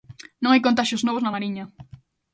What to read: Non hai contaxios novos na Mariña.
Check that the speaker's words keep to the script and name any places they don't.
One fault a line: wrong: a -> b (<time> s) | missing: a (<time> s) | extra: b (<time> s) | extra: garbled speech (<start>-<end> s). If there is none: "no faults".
no faults